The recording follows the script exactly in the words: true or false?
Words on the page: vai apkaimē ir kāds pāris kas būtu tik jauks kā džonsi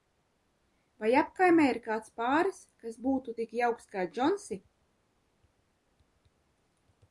true